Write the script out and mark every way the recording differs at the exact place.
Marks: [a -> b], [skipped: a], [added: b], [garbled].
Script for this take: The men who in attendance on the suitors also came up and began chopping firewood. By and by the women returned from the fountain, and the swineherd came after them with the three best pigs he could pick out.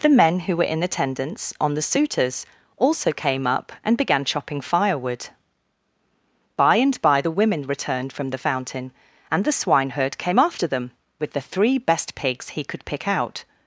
The men who [added: were] in attendance on the suitors also came up and began chopping firewood. By and by the women returned from the fountain, and the swineherd came after them with the three best pigs he could pick out.